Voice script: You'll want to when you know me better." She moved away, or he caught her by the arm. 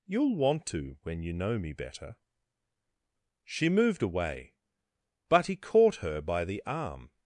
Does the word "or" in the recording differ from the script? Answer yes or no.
yes